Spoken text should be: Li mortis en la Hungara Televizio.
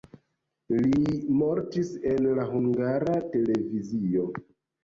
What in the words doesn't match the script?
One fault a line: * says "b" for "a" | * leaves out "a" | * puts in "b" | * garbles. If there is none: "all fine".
all fine